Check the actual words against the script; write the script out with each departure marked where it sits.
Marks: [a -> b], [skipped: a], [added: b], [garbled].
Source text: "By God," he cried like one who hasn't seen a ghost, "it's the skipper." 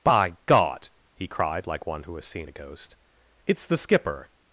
"By God," he cried like one who [hasn't -> has] seen a ghost, "it's the skipper."